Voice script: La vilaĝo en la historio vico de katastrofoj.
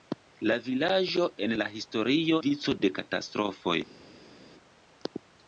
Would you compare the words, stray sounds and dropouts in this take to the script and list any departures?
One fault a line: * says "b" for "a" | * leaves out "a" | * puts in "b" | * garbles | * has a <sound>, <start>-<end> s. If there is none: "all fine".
all fine